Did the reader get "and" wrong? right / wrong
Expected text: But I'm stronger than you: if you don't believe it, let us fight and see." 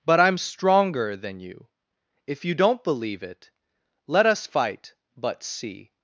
wrong